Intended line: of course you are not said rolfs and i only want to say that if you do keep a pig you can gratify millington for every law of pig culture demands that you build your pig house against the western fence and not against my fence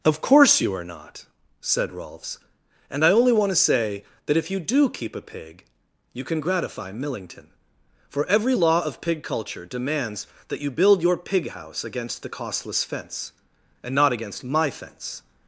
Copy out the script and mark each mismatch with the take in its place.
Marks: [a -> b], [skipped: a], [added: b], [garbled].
of course you are not said rolfs and i only want to say that if you do keep a pig you can gratify millington for every law of pig culture demands that you build your pig house against the [western -> costless] fence and not against my fence